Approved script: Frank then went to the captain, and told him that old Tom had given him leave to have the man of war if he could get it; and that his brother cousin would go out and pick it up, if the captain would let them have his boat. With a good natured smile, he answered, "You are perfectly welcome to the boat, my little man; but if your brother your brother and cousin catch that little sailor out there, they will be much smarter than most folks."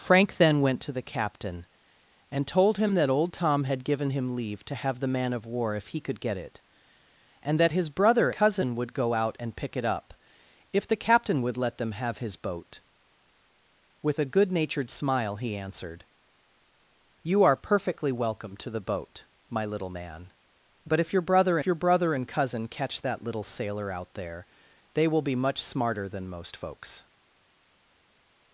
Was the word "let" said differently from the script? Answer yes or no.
no